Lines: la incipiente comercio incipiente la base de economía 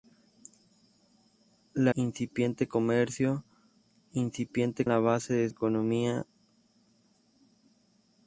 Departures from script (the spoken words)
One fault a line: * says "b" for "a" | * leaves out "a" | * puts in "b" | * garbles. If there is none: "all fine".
all fine